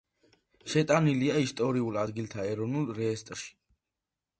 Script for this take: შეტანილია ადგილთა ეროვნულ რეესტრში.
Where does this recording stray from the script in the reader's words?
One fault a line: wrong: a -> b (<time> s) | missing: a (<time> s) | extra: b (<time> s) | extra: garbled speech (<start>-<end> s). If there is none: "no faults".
extra: ისტორიულ (1.5 s)